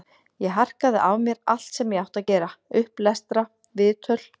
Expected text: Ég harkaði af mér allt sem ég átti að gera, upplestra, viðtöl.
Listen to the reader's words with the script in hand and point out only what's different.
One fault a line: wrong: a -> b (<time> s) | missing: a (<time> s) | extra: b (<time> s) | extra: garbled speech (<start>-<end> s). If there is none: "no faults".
no faults